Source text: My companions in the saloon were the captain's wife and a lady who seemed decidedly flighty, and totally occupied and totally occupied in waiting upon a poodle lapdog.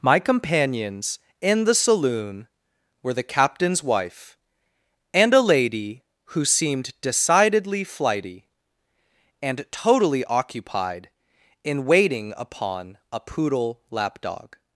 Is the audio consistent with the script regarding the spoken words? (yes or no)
no